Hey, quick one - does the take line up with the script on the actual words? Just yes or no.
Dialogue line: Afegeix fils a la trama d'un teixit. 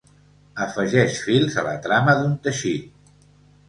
yes